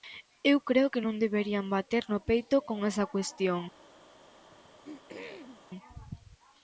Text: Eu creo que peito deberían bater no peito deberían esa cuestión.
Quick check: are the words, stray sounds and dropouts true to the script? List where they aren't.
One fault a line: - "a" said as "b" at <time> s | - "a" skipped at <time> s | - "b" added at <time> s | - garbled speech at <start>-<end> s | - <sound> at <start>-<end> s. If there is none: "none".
- "peito" said as "non" at 1.0 s
- "deberían" said as "con" at 2.7 s
- throat clearing at 4.5-5.7 s